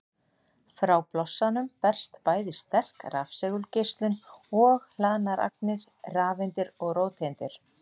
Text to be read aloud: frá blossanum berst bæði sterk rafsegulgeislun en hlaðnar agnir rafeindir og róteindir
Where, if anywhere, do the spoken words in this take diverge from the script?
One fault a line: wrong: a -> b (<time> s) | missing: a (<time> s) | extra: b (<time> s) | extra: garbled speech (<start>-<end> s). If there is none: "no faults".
wrong: en -> og (4.6 s)